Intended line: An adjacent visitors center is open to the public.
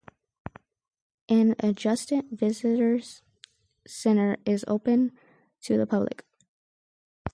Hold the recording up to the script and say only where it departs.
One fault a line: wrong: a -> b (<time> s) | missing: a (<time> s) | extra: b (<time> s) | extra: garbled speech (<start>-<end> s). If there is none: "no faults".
no faults